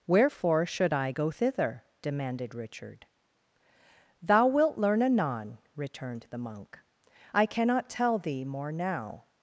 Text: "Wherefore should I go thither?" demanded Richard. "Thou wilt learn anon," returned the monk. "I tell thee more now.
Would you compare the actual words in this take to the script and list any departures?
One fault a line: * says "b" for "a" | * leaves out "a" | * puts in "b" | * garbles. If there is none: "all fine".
* puts in "cannot"